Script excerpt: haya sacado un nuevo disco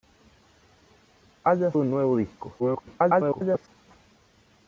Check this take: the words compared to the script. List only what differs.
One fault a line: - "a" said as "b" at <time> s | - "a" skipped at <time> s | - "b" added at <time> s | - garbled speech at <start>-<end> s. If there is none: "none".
- "sacado" skipped at 1.7 s
- garbled speech at 2.6-3.7 s